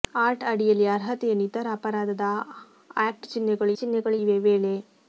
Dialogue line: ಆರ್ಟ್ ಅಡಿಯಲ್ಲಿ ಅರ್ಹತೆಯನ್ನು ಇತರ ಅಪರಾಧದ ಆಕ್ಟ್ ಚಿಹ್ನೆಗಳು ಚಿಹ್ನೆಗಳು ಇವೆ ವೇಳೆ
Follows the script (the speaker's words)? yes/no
yes